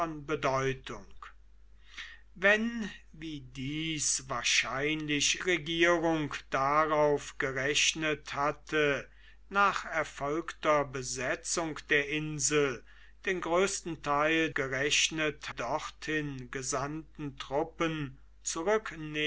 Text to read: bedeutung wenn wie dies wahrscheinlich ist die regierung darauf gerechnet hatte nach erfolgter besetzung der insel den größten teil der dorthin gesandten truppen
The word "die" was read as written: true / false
false